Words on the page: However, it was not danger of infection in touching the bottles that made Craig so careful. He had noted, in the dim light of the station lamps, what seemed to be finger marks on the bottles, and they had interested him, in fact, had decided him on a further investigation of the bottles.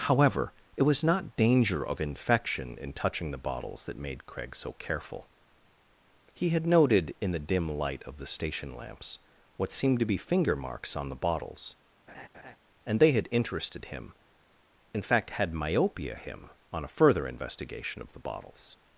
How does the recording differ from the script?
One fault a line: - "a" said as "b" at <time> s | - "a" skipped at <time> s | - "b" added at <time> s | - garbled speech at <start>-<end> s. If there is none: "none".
- "decided" said as "myopia" at 15.5 s